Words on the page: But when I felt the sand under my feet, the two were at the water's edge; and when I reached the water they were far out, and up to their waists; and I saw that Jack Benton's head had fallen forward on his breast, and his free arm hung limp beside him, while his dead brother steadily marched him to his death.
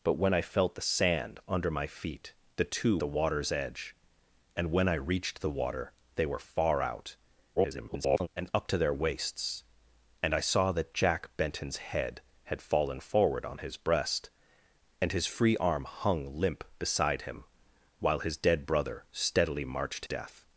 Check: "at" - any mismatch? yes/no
yes